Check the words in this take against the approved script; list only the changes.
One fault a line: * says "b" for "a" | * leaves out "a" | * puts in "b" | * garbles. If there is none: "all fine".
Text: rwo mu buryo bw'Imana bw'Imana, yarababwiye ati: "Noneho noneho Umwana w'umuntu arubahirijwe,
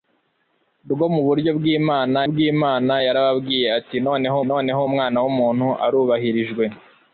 all fine